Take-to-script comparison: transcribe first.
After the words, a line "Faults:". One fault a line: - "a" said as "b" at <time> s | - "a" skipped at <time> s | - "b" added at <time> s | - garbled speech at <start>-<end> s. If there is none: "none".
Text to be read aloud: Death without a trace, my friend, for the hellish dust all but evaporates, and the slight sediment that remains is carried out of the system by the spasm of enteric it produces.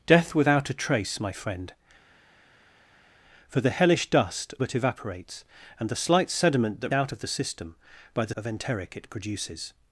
Death without a trace, my friend, for the hellish dust but evaporates, and the slight sediment that out of the system by the of enteric it produces.
Faults:
- "all" skipped at 4.5 s
- "remains is carried" skipped at 6.9 s
- "spasm" skipped at 8.3 s